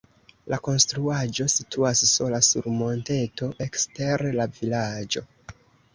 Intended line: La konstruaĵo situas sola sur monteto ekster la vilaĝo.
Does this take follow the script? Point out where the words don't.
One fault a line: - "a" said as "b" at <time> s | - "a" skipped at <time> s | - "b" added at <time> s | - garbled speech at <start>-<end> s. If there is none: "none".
none